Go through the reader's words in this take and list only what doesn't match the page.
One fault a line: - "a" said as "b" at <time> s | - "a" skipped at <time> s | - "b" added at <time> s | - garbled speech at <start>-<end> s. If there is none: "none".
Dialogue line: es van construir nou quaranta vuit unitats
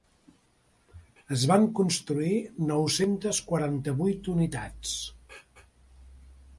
- "centes" added at 3.0 s